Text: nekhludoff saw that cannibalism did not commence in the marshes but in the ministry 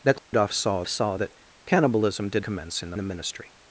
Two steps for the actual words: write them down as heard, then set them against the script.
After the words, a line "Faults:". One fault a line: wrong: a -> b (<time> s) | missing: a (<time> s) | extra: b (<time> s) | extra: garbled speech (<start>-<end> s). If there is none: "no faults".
nekhludoff saw saw that cannibalism did commence in the the ministry
Faults:
extra: saw (0.9 s)
missing: not (2.5 s)
missing: marshes but in (3.0 s)